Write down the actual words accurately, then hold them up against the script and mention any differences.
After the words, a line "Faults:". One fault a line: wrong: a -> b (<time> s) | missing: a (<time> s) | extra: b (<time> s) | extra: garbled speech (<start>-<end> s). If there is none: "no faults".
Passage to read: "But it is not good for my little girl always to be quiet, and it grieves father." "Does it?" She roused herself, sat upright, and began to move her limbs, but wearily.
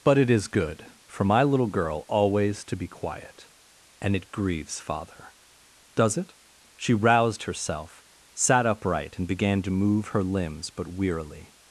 "But it is good for my little girl always to be quiet, and it grieves father." "Does it?" She roused herself, sat upright, and began to move her limbs, but wearily.
Faults:
missing: not (0.5 s)